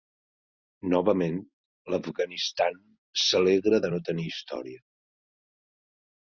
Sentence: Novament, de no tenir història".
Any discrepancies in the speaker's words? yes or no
yes